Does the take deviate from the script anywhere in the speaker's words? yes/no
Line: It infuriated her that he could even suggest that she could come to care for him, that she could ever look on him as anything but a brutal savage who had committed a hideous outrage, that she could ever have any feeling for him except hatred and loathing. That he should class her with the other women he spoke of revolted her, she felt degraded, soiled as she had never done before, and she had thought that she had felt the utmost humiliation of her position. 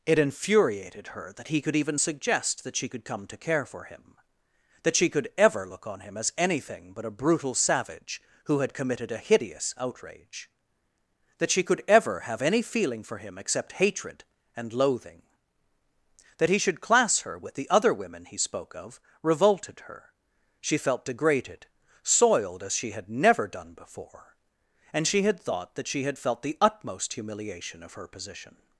no